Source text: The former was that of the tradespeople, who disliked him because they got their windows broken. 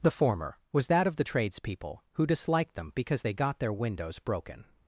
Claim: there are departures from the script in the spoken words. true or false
true